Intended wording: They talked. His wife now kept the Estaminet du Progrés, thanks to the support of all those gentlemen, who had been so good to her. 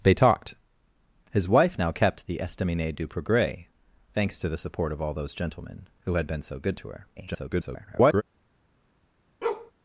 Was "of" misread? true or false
false